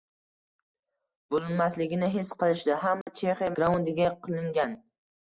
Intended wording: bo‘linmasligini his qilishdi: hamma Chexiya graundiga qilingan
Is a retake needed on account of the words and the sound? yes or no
yes